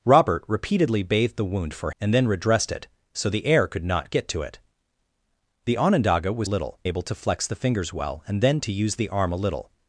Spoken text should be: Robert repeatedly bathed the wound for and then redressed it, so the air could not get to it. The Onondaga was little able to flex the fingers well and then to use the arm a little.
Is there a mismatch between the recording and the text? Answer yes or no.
no